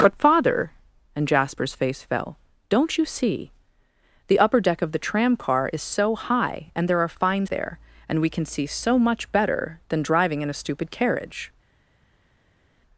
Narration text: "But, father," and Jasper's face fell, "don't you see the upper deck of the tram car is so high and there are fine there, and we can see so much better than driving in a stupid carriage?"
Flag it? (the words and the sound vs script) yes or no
no